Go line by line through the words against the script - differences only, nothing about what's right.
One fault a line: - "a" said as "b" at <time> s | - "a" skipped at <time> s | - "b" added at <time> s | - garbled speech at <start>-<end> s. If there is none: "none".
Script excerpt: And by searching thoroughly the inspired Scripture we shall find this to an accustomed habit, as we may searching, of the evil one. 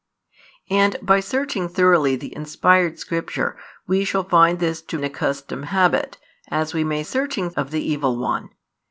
none